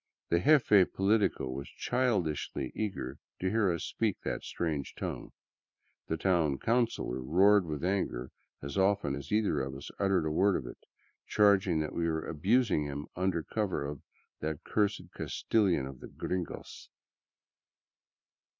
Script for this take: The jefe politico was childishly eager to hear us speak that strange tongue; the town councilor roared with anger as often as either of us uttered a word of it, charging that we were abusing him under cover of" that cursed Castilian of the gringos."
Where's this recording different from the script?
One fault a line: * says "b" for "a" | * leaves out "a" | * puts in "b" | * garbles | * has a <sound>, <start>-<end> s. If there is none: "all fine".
all fine